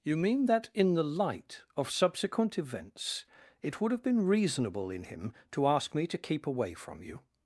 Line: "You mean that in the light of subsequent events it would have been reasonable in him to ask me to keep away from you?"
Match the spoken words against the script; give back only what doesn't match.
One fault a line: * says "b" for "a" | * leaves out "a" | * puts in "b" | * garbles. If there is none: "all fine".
all fine